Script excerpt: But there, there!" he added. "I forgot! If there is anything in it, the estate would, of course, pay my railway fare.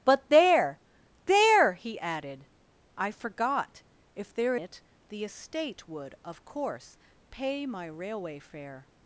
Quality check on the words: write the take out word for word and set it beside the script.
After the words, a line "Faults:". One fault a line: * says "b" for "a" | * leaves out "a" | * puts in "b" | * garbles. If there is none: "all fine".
But there, there!" he added. "I forgot! If there it, the estate would, of course, pay my railway fare.
Faults:
* leaves out "is anything in"